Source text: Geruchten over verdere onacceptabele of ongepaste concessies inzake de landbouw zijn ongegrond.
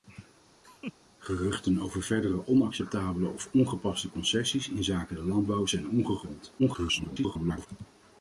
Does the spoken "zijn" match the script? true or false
true